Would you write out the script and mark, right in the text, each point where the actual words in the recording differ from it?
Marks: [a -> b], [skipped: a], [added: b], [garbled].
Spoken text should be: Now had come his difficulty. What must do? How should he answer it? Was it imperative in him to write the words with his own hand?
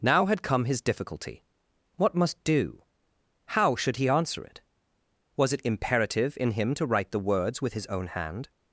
Now had come his difficulty. What must do? How should he answer it? Was it imperative in him to write the words with his own hand?